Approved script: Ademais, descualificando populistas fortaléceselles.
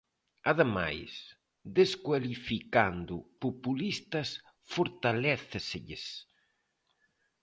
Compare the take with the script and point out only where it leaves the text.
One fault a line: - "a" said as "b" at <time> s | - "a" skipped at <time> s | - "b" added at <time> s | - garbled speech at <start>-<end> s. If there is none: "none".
none